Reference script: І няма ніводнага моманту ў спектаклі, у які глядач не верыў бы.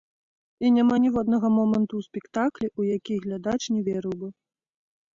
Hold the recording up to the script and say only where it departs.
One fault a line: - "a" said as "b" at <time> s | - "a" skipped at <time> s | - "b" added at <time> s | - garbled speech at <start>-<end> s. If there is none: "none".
none